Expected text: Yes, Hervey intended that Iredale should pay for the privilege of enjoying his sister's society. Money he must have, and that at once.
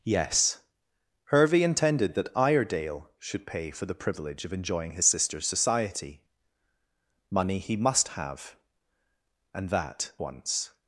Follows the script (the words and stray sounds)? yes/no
no